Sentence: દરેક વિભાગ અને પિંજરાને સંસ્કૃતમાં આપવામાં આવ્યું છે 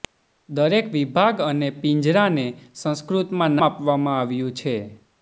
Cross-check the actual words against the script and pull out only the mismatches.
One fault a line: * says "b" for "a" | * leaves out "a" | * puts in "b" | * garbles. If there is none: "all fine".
all fine